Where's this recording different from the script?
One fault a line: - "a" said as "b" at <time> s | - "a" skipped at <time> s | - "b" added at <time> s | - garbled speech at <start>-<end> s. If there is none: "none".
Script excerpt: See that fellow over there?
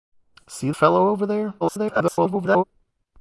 - "that" skipped at 0.7 s
- garbled speech at 1.6-2.6 s